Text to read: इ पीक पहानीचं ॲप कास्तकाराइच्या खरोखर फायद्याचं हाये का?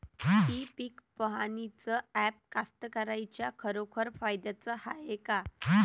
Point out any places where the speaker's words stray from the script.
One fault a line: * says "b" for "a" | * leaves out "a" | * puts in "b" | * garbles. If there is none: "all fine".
all fine